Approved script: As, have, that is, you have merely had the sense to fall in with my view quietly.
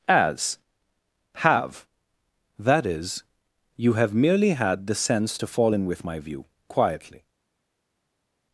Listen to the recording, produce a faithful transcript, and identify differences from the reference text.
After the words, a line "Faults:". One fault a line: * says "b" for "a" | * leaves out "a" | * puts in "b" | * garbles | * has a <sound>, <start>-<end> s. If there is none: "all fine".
As, have, that is, you have merely had the sense to fall in with my view quietly.
Faults:
all fine